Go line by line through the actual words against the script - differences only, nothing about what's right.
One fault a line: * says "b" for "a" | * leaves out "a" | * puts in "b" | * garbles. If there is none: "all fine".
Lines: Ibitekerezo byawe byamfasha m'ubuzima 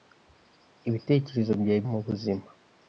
* leaves out "byamfasha"